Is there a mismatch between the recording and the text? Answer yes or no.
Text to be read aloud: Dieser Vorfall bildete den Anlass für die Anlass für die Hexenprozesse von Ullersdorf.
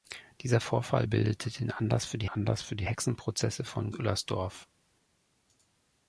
no